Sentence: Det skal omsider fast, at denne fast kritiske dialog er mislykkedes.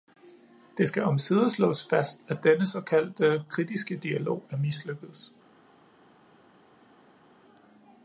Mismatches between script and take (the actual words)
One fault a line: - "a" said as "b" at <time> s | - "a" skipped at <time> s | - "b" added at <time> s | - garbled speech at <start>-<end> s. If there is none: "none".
- "slås" added at 1.5 s
- "fast" said as "såkaldte" at 2.6 s